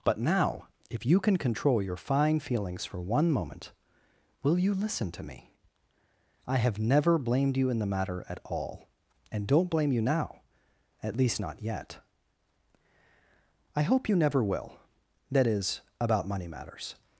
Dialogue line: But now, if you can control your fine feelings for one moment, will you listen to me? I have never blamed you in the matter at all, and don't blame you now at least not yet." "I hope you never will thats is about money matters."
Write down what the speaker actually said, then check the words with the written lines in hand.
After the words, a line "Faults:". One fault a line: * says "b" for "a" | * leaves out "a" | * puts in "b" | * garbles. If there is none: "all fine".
But now, if you can control your fine feelings for one moment, will you listen to me? I have never blamed you in the matter at all, and don't blame you now at least not yet." "I hope you never will that is about money matters."
Faults:
* says "that" for "thats"